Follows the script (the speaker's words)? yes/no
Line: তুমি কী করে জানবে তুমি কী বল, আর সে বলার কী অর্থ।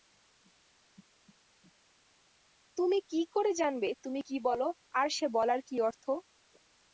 yes